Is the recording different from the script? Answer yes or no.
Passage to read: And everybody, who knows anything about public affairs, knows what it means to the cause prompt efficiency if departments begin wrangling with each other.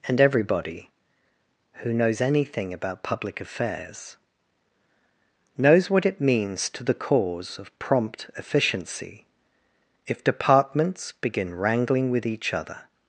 yes